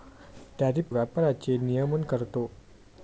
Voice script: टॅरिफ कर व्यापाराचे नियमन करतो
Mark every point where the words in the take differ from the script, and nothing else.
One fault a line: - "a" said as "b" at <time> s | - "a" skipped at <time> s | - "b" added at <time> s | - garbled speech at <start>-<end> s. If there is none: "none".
- "कर" skipped at 0.8 s